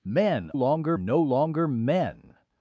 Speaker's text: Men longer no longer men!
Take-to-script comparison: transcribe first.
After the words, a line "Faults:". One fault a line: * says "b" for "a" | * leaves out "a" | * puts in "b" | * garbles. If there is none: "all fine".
Men longer no longer men!
Faults:
all fine